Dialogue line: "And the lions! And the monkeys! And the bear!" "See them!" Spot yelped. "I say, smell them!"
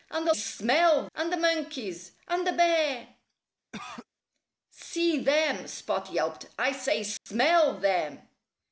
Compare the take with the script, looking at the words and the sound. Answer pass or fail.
fail